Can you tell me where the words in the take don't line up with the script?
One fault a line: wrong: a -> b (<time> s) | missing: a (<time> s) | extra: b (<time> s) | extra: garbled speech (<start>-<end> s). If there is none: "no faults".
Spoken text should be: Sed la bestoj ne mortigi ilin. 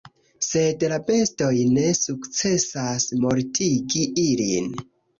extra: sukcesas (2.0 s)